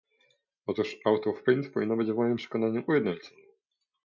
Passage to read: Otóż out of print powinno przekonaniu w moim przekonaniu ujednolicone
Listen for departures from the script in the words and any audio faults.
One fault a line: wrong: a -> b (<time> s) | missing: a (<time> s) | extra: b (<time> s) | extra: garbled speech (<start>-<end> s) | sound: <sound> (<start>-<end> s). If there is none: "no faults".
wrong: przekonaniu -> być (2.0 s)